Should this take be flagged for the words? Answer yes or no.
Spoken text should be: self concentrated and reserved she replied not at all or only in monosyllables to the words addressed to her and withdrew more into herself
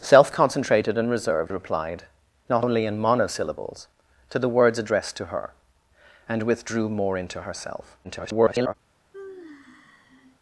yes